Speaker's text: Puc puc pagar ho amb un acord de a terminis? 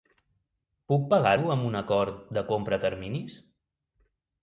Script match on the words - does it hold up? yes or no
no